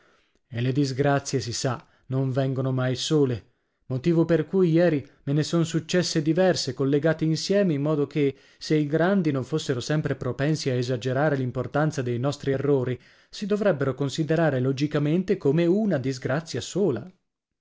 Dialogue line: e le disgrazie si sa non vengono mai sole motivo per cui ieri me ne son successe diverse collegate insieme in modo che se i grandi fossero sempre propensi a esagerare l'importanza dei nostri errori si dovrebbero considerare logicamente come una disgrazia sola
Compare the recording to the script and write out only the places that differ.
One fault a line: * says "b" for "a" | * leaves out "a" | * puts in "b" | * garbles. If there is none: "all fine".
* puts in "non"